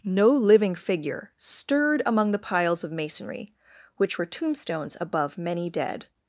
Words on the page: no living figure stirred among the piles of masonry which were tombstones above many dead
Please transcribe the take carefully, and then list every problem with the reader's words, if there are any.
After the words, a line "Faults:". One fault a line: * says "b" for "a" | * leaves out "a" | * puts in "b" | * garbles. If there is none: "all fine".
no living figure stirred among the piles of masonry which were tombstones above many dead
Faults:
all fine